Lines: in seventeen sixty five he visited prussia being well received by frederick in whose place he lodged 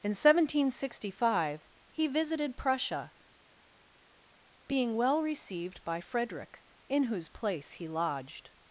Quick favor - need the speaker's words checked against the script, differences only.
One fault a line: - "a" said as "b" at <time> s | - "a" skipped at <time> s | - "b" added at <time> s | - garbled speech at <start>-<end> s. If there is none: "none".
none